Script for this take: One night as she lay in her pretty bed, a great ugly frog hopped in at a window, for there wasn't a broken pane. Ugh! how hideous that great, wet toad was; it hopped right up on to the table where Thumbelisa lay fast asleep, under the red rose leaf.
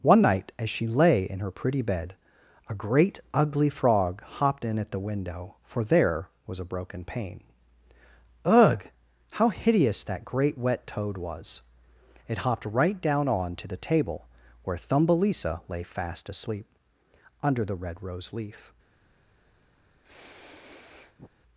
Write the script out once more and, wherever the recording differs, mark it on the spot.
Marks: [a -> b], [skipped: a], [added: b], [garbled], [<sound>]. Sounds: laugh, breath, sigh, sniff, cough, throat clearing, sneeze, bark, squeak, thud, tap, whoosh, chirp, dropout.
One night as she lay in her pretty bed, a great ugly frog hopped in at [a -> the] window, for there [wasn't -> was] a broken pane. Ugh! how hideous that great, wet toad was; it hopped right [up -> down] on to the table where Thumbelisa lay fast asleep, under the red rose leaf. [sniff]